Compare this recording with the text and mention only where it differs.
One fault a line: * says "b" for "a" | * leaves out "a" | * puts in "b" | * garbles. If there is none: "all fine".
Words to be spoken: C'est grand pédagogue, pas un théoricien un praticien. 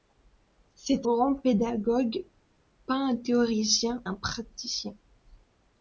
all fine